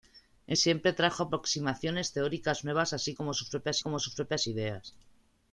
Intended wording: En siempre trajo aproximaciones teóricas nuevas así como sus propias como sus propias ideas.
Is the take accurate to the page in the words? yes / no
yes